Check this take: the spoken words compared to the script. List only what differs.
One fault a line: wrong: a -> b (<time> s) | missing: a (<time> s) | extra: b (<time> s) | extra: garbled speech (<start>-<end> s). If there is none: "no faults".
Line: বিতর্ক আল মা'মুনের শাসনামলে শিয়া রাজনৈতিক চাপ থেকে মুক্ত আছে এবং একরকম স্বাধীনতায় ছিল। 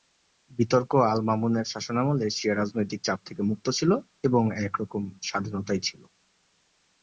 wrong: আছে -> ছিল (3.7 s)